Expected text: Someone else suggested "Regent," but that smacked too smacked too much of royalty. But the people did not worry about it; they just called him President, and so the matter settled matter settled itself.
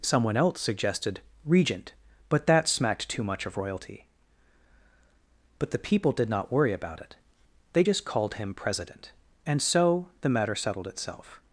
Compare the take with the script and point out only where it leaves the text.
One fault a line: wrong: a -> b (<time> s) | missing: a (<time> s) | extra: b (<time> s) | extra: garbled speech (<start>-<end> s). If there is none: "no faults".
missing: smacked too (3.2 s)
missing: matter settled (10.9 s)